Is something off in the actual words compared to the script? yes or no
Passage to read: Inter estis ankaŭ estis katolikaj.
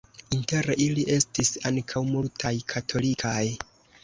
yes